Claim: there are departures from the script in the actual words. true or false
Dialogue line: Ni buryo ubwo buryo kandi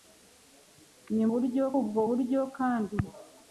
false